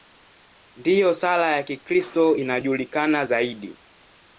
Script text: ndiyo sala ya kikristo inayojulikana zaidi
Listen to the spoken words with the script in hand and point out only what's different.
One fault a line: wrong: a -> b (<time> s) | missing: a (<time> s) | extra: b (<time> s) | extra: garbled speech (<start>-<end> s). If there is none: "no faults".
no faults